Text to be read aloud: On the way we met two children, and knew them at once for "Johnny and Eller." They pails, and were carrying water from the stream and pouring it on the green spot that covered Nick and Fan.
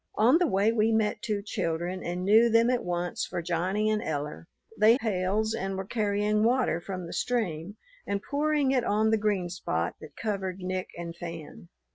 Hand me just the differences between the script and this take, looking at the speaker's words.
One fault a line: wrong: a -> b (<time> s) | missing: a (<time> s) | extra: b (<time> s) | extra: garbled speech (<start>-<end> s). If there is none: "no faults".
no faults